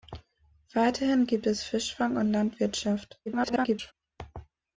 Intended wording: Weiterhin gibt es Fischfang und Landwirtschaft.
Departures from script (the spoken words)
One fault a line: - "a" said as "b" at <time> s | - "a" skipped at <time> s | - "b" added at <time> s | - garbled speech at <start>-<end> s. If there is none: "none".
- garbled speech at 3.3-3.9 s